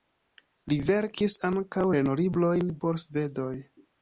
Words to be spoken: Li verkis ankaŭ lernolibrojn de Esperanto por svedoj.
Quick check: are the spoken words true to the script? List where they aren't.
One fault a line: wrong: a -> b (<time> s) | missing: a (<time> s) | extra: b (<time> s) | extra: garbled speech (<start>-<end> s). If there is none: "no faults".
missing: de Esperanto (2.7 s)